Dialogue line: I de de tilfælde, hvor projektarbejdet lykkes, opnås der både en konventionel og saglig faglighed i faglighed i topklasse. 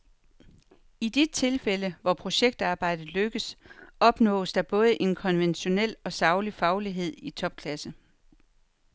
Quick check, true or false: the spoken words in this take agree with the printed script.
false